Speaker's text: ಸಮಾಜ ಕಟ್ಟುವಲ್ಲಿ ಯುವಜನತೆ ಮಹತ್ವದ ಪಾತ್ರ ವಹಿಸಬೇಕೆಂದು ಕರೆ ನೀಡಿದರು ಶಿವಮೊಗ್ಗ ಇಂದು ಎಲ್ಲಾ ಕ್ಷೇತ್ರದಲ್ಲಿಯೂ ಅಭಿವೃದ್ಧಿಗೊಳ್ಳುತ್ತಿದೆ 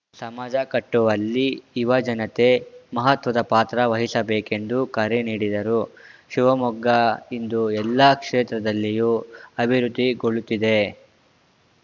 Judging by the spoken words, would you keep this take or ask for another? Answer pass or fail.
pass